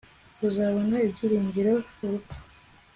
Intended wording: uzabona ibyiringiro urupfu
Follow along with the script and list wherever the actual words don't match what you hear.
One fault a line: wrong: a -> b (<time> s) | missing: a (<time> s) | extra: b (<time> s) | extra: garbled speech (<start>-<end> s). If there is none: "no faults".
no faults